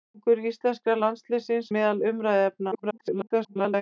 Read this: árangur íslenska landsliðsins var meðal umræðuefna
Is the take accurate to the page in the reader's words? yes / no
no